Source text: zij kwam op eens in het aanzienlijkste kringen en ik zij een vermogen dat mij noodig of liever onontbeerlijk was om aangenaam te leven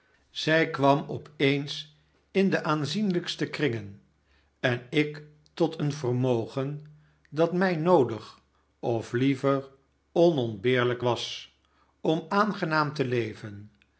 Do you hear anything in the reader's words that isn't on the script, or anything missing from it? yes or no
yes